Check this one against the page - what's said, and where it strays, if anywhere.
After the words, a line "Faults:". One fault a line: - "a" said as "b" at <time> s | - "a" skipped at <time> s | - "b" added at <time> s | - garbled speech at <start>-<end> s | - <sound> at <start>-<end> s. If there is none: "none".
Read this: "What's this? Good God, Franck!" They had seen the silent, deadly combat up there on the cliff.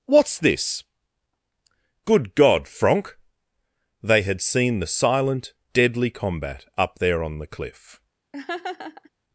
"What's this? Good God, Franck!" They had seen the silent, deadly combat up there on the cliff.
Faults:
- laugh at 8.3-9.1 s